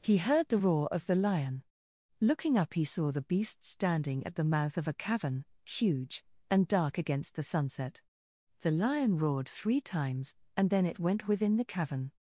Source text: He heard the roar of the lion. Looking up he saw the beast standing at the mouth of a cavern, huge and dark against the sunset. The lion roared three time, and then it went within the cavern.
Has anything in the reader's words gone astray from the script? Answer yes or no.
yes